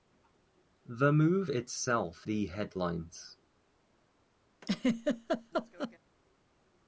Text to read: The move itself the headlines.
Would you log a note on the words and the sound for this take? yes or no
yes